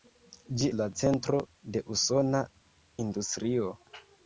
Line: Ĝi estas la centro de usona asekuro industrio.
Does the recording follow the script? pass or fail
fail